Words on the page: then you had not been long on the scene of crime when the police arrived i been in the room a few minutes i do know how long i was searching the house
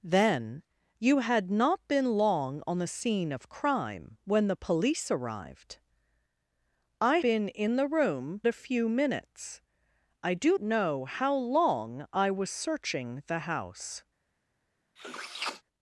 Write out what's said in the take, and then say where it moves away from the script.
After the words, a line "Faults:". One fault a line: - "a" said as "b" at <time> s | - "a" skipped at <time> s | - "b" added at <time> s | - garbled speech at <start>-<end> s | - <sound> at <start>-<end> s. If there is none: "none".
then you had not been long on the scene of crime when the police arrived i been in the room a few minutes i do know how long i was searching the house
Faults:
- sniff at 15.0-15.6 s